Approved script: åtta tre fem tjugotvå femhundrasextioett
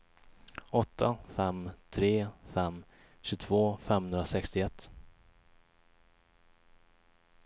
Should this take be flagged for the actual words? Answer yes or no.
yes